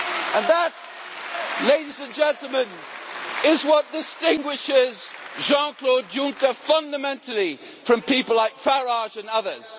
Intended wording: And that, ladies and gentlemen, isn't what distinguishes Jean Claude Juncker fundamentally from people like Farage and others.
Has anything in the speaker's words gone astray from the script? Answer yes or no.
yes